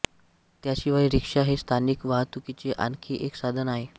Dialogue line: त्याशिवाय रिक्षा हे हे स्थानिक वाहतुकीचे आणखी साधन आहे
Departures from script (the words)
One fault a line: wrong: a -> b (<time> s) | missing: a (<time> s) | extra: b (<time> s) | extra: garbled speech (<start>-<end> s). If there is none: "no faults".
missing: हे (1.6 s)
extra: एक (3.2 s)